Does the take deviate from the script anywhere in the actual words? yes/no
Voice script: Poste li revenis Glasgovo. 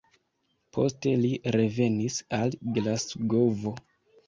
yes